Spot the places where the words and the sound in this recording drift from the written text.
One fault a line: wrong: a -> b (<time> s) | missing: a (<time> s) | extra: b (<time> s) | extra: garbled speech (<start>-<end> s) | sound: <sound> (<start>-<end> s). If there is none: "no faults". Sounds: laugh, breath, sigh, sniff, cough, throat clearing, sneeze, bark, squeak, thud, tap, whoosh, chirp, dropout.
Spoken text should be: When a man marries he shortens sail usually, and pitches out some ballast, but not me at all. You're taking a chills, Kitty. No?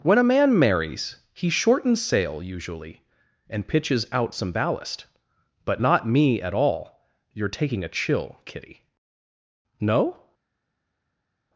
wrong: chills -> chill (7.9 s)